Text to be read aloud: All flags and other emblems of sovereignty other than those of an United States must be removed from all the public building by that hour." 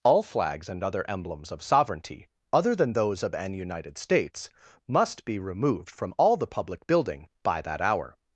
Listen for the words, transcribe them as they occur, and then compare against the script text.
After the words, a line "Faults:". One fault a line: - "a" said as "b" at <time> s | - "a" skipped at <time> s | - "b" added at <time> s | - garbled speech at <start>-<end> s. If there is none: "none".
All flags and other emblems of sovereignty other than those of an United States must be removed from all the public building by that hour."
Faults:
none